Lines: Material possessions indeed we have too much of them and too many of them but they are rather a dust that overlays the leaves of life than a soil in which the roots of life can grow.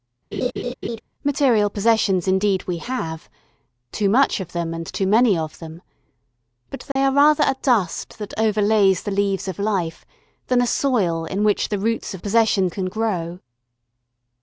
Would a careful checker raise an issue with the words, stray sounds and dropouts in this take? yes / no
yes